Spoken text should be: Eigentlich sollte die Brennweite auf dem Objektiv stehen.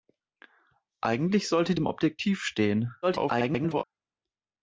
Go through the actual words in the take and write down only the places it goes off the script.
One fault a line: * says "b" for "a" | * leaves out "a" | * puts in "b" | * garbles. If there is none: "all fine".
* leaves out "die Brennweite auf"
* garbles